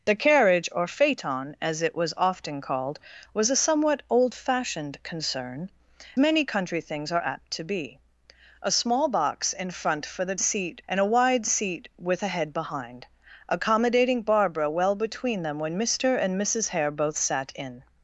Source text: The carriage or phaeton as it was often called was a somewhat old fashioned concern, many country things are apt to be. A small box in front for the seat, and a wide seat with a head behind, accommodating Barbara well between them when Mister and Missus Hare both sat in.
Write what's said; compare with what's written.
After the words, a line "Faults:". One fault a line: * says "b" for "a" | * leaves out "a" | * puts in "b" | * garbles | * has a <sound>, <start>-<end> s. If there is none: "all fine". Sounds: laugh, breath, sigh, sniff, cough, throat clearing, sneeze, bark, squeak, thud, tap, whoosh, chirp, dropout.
The carriage or phaeton as it was often called was a somewhat old fashioned concern, many country things are apt to be. A small box in front for the seat, and a wide seat with a head behind, accommodating Barbara well between them when Mister and Missus Hare both sat in.
Faults:
all fine